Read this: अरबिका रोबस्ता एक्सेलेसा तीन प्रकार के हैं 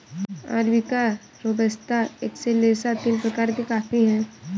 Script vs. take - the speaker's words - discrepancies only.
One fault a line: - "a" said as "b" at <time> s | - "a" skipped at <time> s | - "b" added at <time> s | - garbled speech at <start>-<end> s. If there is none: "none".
- "कॉफी" added at 3.7 s